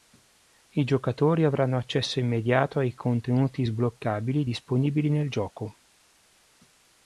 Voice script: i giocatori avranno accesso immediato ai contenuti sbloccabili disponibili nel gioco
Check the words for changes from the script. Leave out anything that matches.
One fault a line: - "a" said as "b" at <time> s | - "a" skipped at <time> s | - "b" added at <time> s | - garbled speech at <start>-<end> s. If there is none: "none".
none